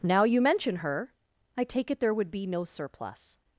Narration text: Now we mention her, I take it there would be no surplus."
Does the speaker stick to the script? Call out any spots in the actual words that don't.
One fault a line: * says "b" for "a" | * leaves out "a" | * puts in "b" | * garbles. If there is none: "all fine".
* says "you" for "we"